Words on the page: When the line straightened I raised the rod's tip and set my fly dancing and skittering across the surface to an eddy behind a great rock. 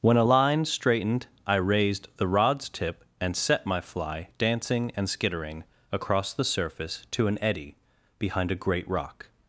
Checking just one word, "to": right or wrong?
right